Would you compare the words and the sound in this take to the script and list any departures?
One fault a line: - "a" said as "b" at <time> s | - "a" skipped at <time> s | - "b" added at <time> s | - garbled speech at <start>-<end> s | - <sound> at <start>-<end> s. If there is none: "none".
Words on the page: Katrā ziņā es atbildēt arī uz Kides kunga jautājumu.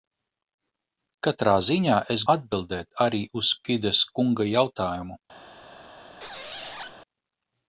- squeak at 6.2-7.0 s